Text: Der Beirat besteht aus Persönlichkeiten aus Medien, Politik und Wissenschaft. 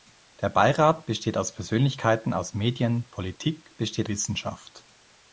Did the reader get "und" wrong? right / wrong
wrong